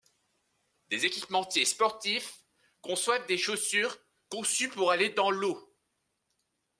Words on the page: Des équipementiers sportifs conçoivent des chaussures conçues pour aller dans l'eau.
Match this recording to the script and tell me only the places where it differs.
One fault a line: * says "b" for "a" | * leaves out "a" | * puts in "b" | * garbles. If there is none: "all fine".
all fine